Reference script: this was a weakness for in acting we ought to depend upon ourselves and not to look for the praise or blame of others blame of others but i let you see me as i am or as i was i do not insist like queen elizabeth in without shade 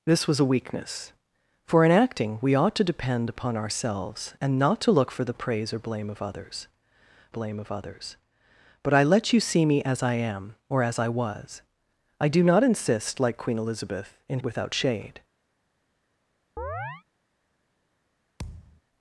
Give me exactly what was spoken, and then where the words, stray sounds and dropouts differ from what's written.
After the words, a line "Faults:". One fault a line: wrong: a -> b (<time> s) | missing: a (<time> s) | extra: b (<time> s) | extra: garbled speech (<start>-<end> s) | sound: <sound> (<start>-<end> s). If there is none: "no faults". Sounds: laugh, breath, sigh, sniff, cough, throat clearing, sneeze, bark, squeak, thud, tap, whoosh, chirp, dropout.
this was a weakness for in acting we ought to depend upon ourselves and not to look for the praise or blame of others blame of others but i let you see me as i am or as i was i do not insist like queen elizabeth in without shade
Faults:
sound: chirp (16.6-17.0 s)
sound: thud (18.4-18.8 s)